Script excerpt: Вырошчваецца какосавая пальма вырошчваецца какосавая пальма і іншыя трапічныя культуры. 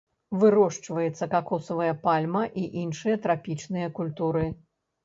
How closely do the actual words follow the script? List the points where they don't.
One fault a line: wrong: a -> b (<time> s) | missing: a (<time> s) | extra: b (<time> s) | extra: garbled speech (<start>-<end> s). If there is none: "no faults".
missing: вырошчваецца какосавая пальма (2.4 s)